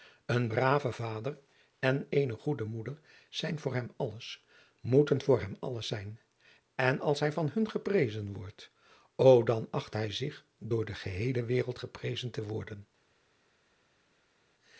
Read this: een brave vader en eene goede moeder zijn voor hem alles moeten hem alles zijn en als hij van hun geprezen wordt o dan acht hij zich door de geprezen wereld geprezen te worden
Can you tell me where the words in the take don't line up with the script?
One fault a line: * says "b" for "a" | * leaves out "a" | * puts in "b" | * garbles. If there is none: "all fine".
* puts in "voor"
* says "geheele" for "geprezen"